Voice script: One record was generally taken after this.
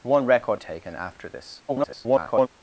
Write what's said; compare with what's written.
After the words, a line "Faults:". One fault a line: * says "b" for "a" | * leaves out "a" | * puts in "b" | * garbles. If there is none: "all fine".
One record taken after this. [garbled]
Faults:
* leaves out "was generally"
* garbles